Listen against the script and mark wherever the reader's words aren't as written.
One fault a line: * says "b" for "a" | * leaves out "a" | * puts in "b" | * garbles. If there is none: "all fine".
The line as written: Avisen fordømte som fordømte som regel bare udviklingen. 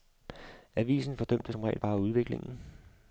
* leaves out "fordømte som"